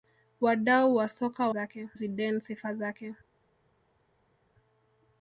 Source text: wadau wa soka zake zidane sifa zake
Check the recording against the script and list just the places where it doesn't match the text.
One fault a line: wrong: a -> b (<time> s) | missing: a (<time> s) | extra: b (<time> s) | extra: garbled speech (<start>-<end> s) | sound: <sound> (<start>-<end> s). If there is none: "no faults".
no faults